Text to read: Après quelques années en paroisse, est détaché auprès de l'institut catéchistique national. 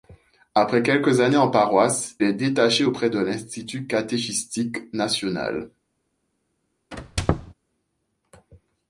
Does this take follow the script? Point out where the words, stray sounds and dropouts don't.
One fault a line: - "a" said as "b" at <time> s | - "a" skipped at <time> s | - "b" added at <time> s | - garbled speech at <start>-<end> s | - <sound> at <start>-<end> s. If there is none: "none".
- squeak at 6.9-7.5 s